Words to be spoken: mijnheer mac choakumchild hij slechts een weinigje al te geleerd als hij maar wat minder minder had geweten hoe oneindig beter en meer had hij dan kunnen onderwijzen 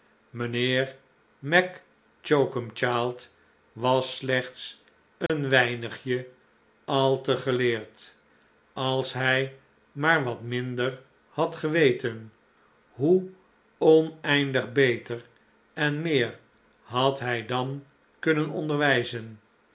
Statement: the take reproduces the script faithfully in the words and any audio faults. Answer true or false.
false